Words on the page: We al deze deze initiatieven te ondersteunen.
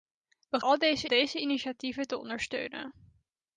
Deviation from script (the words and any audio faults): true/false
false